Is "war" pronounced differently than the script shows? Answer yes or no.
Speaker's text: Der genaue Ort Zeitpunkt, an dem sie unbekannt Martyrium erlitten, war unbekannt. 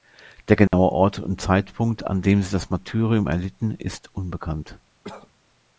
yes